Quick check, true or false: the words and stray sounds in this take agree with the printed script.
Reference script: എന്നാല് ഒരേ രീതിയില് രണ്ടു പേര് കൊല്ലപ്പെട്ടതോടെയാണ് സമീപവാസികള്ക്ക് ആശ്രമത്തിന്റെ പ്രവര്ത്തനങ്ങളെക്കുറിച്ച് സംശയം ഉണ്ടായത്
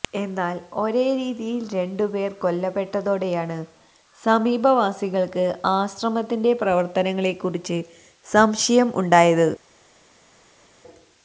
true